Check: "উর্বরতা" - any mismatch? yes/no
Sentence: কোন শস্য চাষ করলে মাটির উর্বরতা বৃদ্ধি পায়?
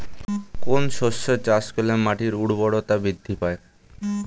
no